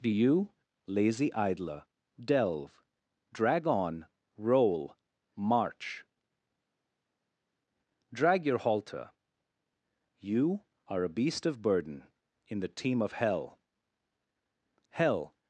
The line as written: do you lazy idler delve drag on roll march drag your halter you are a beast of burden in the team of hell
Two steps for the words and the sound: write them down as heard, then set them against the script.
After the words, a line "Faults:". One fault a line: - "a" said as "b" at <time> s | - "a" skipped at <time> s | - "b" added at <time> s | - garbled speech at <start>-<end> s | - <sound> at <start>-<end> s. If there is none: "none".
do you lazy idler delve drag on roll march drag your halter you are a beast of burden in the team of hell hell
Faults:
- "hell" added at 14.9 s